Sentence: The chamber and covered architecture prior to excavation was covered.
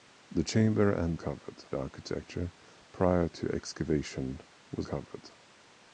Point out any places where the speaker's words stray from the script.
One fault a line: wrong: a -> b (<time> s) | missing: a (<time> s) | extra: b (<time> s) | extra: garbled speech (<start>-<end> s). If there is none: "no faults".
no faults